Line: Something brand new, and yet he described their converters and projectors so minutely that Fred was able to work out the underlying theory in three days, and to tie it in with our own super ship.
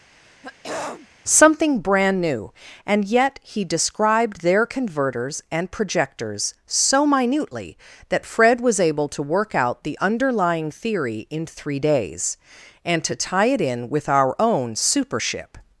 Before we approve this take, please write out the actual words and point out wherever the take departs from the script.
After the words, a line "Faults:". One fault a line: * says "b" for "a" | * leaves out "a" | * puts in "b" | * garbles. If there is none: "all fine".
Something brand new, and yet he described their converters and projectors so minutely that Fred was able to work out the underlying theory in three days, and to tie it in with our own super ship.
Faults:
all fine